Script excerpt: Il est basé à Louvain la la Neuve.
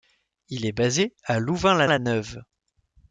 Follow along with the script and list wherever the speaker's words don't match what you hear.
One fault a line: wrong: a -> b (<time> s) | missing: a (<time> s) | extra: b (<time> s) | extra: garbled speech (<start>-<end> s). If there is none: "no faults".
no faults